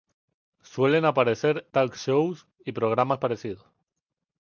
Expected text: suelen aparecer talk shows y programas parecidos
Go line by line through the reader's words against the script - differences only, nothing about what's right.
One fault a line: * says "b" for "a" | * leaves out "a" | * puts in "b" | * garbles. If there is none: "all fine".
all fine